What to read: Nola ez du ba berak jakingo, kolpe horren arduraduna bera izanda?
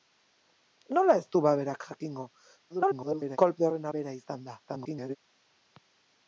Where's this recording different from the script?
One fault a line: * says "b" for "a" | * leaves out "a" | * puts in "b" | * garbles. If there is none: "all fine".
* garbles
* leaves out "arduraduna"
* garbles